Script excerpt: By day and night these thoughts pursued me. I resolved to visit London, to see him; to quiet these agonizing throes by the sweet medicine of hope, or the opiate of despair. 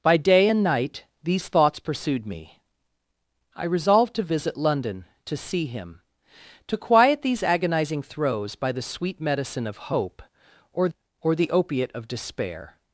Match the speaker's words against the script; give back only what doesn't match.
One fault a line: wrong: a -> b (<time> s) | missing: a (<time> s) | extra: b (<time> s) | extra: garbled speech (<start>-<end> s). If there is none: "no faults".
extra: or (11.2 s)